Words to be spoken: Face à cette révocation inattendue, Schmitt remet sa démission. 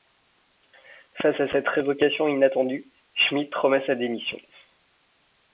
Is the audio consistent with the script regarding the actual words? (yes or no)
yes